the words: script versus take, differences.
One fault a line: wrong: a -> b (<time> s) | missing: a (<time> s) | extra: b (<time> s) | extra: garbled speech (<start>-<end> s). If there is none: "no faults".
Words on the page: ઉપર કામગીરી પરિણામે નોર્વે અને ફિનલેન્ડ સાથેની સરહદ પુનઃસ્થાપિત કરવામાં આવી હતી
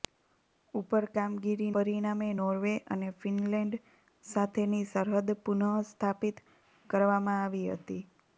no faults